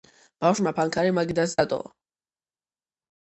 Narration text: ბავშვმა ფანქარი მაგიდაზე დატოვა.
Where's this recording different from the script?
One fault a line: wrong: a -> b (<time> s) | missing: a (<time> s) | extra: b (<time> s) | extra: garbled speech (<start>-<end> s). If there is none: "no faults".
no faults